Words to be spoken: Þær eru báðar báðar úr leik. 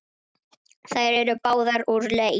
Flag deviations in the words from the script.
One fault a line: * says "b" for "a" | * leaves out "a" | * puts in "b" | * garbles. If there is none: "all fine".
* leaves out "báðar"